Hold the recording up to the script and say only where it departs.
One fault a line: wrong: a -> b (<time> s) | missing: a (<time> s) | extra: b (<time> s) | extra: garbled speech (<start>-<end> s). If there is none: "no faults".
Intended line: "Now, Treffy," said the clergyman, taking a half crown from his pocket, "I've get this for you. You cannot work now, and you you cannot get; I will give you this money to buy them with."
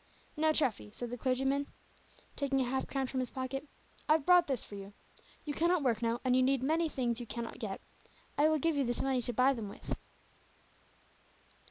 wrong: get -> brought (4.2 s)
extra: need many things (6.4 s)